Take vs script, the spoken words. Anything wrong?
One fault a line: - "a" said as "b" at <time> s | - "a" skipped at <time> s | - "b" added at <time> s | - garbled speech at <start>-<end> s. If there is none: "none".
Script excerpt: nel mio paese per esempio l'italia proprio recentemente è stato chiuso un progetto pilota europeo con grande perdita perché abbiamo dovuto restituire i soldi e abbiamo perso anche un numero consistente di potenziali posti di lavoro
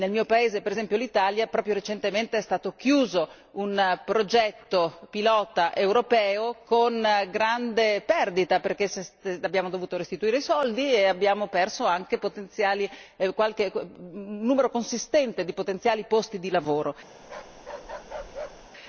none